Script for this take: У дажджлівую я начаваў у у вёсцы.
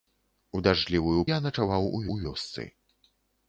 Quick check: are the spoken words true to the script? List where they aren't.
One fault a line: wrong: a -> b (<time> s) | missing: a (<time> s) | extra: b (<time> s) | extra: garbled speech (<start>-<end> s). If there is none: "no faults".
no faults